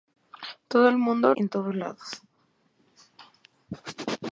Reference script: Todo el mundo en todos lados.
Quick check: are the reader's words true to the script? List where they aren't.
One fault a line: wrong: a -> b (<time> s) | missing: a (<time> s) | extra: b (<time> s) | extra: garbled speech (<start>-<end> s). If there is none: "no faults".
no faults